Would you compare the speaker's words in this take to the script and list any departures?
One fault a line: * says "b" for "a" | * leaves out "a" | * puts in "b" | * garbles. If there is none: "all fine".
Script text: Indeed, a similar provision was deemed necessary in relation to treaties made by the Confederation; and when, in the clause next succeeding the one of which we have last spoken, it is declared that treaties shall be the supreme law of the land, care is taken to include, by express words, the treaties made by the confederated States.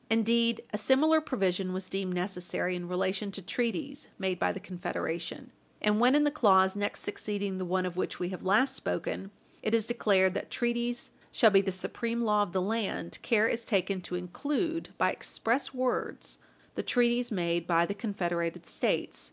all fine